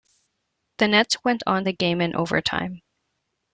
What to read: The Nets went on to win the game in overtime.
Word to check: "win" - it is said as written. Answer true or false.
false